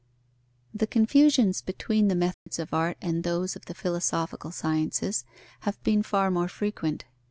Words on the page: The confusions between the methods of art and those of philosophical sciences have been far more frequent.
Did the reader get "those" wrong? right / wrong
right